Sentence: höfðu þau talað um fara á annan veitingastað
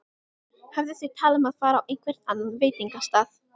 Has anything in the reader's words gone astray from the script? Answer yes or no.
yes